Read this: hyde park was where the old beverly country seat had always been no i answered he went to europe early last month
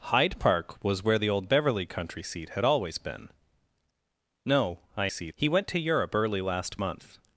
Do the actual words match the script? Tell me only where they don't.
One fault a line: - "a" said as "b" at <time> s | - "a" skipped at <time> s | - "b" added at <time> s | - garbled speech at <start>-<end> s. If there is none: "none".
- "answered" said as "seat" at 5.1 s